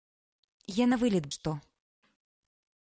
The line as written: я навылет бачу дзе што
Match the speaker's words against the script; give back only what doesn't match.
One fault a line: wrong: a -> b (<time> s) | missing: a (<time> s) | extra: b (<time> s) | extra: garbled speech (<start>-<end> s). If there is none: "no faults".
missing: бачу дзе (1.3 s)